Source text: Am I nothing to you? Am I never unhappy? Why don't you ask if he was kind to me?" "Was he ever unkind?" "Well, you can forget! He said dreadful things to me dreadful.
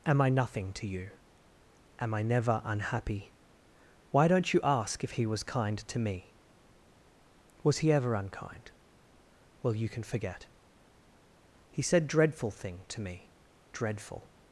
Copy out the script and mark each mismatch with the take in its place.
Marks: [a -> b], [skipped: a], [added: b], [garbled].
Am I nothing to you? Am I never unhappy? Why don't you ask if he was kind to me?" "Was he ever unkind?" "Well, you can forget! He said dreadful [things -> thing] to me dreadful.